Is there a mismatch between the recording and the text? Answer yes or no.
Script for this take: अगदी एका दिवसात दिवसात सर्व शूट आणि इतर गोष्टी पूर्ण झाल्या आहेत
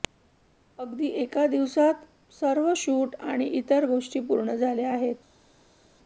yes